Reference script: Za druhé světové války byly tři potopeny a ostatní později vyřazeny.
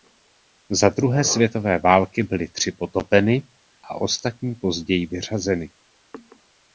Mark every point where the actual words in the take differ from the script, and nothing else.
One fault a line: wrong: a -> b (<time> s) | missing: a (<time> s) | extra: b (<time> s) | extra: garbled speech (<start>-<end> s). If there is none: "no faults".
no faults